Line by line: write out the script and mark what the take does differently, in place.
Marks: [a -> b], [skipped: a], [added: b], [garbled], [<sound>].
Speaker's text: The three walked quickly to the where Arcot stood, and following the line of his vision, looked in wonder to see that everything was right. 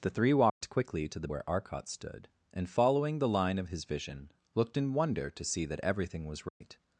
The three walked [dropout] quickly to the where Arcot stood, and following the line of his vision, looked in wonder to see that everything was right. [dropout]